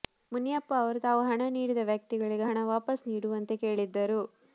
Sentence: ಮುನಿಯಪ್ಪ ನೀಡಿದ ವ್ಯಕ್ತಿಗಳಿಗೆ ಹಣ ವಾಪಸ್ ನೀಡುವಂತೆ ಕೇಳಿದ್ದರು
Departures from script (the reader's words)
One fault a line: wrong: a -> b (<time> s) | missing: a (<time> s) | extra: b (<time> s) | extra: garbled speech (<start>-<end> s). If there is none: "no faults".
extra: ಅವರು ತಾವು ಹಣ (0.8 s)